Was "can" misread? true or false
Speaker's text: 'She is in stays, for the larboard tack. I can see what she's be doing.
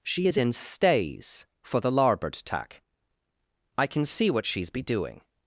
false